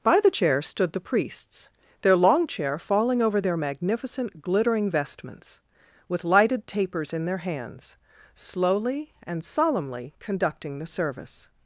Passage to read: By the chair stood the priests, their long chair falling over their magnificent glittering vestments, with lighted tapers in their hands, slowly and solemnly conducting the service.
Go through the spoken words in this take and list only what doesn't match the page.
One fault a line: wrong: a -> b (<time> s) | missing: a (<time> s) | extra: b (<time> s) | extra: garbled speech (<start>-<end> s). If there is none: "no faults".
no faults